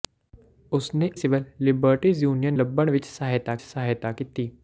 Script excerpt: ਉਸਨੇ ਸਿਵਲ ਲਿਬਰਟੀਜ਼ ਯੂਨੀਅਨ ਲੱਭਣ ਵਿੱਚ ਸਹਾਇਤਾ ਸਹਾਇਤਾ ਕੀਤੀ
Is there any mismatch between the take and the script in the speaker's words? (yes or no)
no